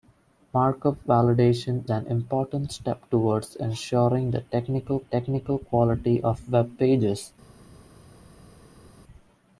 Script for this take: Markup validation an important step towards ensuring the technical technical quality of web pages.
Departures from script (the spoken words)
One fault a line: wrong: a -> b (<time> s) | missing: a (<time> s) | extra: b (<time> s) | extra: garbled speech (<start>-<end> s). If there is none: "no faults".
no faults